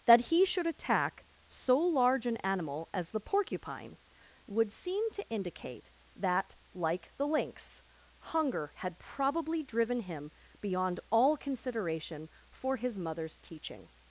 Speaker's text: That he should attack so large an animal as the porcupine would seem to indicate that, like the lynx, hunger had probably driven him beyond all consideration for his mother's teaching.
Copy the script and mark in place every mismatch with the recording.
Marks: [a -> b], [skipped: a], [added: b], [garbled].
That he should attack so large an animal as the porcupine would seem to indicate that, like the lynx, hunger had probably driven him beyond all consideration for his mother's teaching.